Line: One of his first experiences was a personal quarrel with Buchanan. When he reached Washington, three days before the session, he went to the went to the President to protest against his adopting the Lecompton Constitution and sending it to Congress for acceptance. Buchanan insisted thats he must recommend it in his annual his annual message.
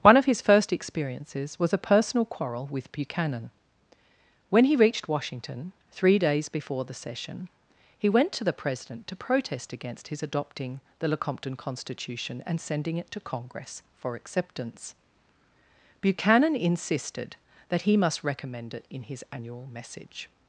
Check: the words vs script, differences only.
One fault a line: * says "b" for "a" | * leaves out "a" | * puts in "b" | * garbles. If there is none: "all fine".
* leaves out "went to the"
* says "that" for "thats"
* leaves out "his annual"